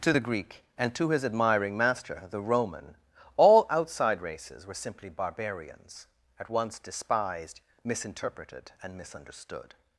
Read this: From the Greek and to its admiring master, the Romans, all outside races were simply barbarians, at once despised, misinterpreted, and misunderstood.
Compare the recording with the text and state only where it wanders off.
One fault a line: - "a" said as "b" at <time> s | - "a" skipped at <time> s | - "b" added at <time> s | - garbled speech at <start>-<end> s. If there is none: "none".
- "From" said as "To" at 0.0 s
- "its" said as "his" at 1.1 s
- "Romans" said as "Roman" at 2.4 s